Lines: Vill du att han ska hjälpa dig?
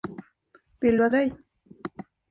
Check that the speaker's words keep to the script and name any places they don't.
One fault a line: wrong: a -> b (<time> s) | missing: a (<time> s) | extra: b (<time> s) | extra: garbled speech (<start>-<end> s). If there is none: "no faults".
missing: han ska hjälpa (1.1 s)